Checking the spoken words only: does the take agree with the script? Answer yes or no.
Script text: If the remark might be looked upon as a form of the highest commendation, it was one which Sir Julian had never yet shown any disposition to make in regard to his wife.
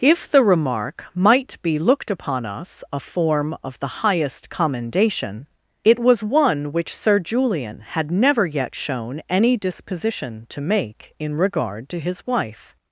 no